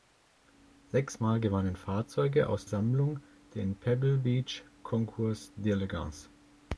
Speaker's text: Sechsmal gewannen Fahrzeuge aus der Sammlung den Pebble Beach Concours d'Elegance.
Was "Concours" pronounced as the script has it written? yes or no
yes